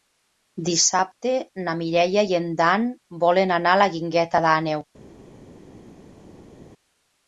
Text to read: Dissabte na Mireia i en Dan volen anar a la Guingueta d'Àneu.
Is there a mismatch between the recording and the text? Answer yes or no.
no